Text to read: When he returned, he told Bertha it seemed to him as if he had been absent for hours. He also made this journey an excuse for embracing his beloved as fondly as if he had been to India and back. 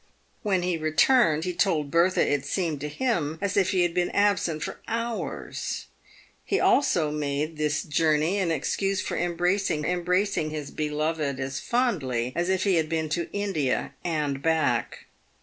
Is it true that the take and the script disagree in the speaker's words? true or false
true